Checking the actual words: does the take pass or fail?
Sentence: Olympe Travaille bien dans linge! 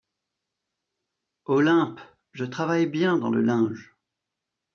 fail